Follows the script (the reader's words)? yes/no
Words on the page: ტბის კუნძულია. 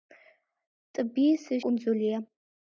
yes